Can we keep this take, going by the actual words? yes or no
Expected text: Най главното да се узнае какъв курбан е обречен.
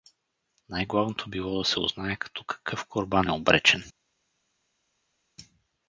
no